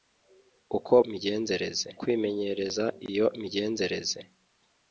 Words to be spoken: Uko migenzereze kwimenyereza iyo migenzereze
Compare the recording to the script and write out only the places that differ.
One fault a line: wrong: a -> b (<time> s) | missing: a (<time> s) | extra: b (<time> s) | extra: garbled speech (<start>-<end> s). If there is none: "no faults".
no faults